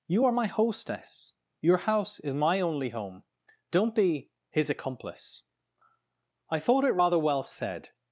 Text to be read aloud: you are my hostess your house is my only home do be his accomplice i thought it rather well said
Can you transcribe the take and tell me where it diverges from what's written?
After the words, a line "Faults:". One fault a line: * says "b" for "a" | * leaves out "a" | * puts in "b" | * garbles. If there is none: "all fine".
you are my hostess your house is my only home don't be his accomplice i thought it rather well said
Faults:
* says "don't" for "do"